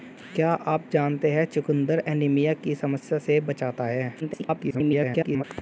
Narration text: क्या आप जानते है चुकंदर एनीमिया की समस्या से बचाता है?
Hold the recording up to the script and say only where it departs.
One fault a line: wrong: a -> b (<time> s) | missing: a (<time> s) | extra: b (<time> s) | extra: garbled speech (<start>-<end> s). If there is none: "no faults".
extra: garbled speech (4.2-5.4 s)